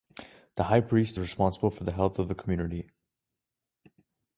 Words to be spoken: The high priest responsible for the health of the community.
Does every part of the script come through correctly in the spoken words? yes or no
yes